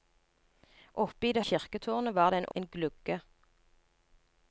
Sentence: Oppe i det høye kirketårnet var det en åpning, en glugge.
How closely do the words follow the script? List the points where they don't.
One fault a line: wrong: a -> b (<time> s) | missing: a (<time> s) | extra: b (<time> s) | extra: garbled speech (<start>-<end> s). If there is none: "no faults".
missing: høye (1.4 s)
missing: åpning (2.5 s)